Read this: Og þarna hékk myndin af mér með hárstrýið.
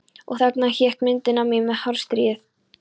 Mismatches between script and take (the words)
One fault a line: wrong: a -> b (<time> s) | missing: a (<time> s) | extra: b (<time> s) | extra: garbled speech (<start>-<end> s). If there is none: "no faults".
no faults